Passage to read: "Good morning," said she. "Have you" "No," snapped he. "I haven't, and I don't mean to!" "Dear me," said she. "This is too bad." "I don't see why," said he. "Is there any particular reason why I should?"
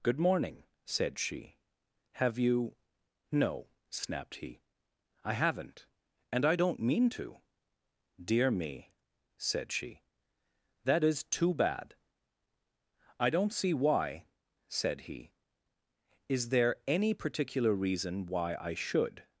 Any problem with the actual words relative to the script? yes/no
yes